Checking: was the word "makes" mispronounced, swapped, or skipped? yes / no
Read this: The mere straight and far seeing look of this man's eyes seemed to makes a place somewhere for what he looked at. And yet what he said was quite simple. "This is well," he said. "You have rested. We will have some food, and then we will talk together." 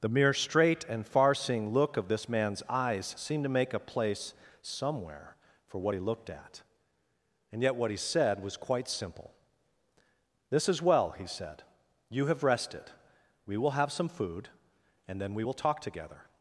yes